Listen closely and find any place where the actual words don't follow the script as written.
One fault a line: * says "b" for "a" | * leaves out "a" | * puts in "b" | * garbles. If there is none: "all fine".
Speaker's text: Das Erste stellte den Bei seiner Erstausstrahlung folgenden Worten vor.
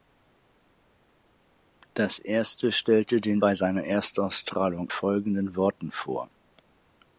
all fine